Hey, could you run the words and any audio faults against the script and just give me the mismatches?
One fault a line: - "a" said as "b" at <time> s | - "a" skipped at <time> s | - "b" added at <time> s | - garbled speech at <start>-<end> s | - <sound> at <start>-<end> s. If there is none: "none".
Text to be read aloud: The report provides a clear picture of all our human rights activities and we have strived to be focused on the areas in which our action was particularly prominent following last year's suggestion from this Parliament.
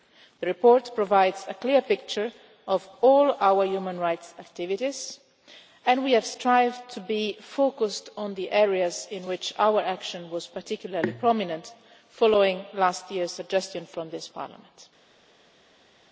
none